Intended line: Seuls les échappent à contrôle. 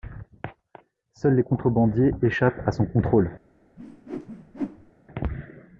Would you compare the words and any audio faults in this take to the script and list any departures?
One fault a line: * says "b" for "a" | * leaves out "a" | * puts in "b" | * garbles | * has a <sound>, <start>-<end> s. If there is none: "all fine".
* puts in "contrebandiers"
* puts in "son"
* has a whoosh, 3.8-4.9 s